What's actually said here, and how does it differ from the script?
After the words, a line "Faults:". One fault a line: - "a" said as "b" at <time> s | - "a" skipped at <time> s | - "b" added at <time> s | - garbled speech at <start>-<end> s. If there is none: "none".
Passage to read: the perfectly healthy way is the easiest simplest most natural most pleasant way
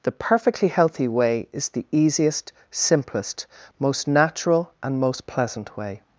the perfectly healthy way is the easiest simplest most natural and most pleasant way
Faults:
- "and" added at 4.8 s